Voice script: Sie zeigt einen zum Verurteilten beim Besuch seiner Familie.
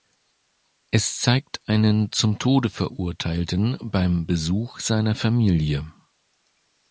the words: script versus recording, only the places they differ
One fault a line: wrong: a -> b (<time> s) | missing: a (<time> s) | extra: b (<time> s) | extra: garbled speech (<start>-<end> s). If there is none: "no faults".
wrong: Sie -> Es (0.9 s)
extra: Tode (2.4 s)